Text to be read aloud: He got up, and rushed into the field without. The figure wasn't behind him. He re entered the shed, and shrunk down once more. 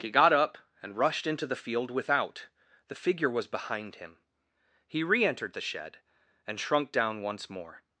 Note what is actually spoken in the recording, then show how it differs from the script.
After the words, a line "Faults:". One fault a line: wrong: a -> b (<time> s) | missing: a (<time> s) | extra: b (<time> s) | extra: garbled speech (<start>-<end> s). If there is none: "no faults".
He got up, and rushed into the field without. The figure was behind him. He re entered the shed, and shrunk down once more.
Faults:
wrong: wasn't -> was (3.3 s)